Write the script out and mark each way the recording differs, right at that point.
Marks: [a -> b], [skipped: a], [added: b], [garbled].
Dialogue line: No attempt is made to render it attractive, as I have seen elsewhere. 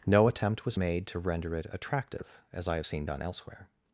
No attempt [is -> was] made to render it attractive, as I have seen [added: done] elsewhere.